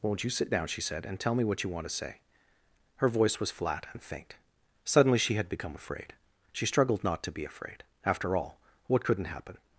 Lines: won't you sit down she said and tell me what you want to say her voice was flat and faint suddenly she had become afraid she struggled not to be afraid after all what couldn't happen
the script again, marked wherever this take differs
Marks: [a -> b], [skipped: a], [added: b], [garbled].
won't you sit down she said and tell me what you want to say her voice was flat and faint suddenly she had become afraid she struggled not to be afraid after all what couldn't happen